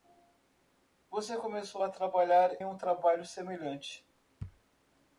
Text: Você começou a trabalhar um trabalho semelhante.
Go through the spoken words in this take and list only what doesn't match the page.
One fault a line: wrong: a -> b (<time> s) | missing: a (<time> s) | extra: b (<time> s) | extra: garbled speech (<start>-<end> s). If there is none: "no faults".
no faults